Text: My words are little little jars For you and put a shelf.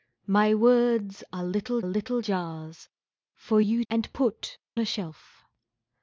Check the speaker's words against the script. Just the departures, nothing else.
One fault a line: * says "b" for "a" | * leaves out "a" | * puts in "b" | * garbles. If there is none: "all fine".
all fine